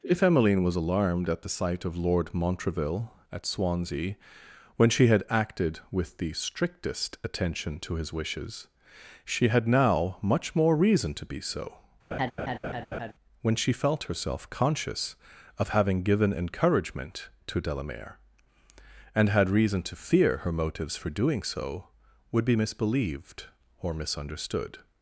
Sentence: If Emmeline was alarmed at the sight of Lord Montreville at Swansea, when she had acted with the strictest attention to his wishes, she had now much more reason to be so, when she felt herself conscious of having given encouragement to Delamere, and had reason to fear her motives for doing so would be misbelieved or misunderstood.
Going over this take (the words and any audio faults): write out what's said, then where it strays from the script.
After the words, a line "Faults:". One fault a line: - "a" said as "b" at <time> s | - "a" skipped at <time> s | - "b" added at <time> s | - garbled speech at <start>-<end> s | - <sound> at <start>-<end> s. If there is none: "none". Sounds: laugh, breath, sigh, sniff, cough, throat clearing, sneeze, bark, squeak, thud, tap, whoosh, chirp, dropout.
If Emmeline was alarmed at the sight of Lord Montreville at Swansea, when she had acted with the strictest attention to his wishes, she had now much more reason to be so, when she felt herself conscious of having given encouragement to Delamere, and had reason to fear her motives for doing so would be misbelieved or misunderstood.
Faults:
- laugh at 12.1-13.1 s